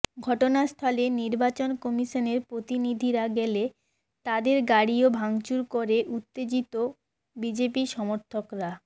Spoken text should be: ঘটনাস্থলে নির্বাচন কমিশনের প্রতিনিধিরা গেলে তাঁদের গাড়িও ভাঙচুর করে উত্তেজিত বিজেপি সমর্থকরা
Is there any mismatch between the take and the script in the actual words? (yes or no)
no